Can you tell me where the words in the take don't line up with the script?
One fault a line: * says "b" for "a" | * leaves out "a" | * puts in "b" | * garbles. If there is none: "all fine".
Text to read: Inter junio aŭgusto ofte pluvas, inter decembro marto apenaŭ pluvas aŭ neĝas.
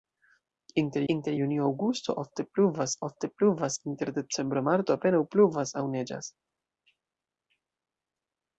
* puts in "inter"
* puts in "ofte pluvas"